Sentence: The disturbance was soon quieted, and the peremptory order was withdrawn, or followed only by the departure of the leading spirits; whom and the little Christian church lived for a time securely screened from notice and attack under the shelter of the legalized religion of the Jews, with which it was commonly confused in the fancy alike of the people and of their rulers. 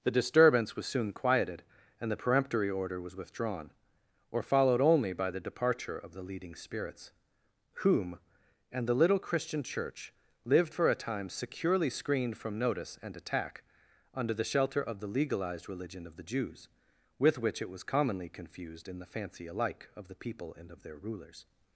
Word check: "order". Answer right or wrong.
right